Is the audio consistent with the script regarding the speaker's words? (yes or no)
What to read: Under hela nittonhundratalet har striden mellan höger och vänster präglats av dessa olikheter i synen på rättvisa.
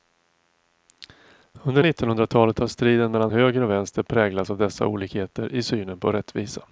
no